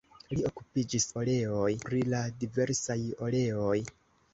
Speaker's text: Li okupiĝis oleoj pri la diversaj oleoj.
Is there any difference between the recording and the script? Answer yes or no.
no